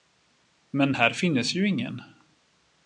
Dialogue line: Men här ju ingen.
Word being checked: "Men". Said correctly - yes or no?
yes